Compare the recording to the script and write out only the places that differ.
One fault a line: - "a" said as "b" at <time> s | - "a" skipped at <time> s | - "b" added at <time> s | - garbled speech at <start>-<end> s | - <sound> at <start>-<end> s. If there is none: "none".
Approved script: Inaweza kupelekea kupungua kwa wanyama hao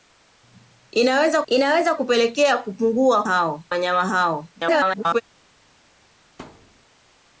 - "inaweza" added at 1.5 s
- "kwa" said as "hao" at 3.2 s
- garbled speech at 4.6-5.2 s
- thud at 6.4-6.8 s